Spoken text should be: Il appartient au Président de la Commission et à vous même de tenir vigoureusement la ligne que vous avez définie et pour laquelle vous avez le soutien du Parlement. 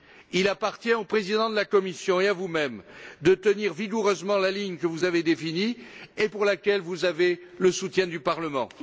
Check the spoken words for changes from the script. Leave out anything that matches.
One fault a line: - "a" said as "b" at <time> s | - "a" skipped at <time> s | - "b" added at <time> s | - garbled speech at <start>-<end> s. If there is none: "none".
none